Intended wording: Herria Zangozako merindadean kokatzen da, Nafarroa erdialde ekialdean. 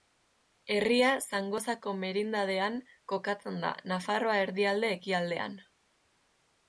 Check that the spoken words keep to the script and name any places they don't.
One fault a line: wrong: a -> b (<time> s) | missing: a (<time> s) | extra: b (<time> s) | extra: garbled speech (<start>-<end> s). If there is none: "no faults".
no faults